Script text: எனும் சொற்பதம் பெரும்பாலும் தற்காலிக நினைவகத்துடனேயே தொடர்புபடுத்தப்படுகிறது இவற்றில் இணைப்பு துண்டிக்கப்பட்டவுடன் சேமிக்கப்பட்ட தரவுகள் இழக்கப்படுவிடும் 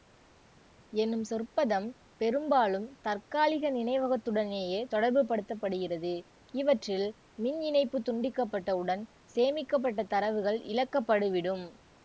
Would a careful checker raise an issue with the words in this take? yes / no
yes